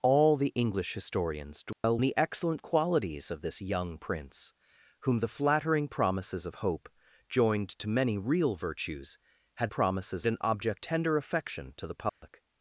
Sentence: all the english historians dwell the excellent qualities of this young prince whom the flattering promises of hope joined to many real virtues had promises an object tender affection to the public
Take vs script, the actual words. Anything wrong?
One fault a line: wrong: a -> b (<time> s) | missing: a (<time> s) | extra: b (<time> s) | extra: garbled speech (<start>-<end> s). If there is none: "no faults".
no faults